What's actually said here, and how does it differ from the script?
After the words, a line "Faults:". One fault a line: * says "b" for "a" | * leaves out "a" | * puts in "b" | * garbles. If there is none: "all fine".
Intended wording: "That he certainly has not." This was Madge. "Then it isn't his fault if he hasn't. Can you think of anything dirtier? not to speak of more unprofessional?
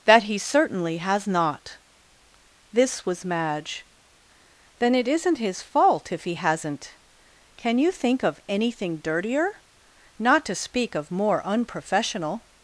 "That he certainly has not." This was Madge. "Then it isn't his fault if he hasn't. Can you think of anything dirtier? not to speak of more unprofessional?
Faults:
all fine